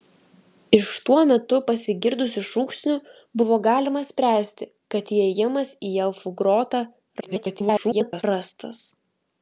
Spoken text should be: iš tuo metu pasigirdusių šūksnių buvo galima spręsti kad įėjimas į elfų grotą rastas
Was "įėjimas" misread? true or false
false